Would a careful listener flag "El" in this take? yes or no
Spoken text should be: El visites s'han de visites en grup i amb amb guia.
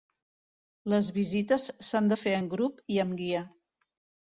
yes